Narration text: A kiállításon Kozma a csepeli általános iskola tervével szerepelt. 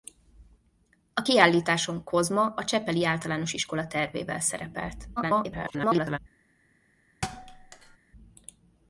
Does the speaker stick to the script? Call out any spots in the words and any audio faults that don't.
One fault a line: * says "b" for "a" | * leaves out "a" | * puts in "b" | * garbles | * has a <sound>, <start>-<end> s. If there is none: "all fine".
* garbles
* has a thud, 7.2-8.0 s